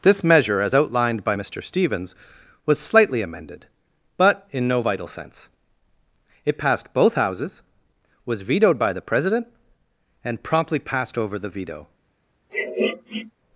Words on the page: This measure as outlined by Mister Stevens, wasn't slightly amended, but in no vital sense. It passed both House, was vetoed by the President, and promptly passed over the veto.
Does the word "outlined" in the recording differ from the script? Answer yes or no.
no